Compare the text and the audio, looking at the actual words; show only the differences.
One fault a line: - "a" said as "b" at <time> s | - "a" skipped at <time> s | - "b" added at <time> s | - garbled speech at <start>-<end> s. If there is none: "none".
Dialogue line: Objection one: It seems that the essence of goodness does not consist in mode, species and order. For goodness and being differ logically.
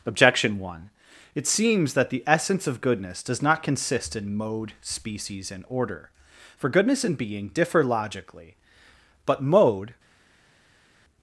- "But mode" added at 9.3 s